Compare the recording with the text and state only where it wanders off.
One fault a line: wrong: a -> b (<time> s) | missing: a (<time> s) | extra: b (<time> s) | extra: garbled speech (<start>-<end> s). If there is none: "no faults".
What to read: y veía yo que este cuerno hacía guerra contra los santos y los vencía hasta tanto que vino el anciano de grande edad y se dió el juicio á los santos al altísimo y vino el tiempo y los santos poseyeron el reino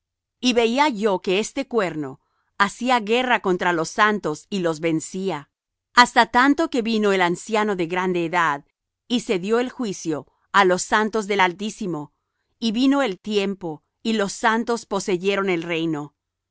wrong: al -> del (11.3 s)